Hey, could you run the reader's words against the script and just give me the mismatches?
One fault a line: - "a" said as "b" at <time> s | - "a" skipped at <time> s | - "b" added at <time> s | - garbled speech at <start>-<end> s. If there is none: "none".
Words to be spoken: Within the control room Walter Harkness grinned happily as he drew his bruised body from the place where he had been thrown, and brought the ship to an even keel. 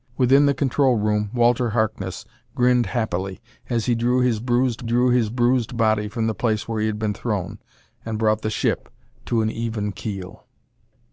- "drew his bruised" added at 4.8 s